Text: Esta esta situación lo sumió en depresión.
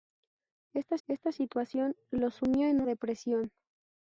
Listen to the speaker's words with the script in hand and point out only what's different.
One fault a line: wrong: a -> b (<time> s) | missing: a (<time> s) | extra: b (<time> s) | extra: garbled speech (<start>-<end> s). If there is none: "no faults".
no faults